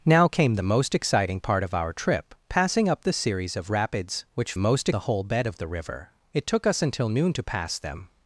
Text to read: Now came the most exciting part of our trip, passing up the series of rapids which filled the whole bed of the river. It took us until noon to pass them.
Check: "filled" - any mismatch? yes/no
yes